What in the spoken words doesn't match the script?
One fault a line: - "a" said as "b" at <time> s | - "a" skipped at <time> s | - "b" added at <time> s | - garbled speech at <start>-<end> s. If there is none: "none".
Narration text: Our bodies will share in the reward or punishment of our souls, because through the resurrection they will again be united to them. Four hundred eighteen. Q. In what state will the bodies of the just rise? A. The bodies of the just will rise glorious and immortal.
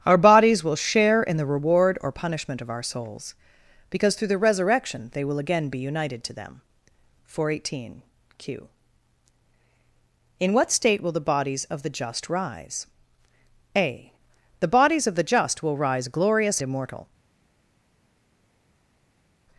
- "and" skipped at 16.6 s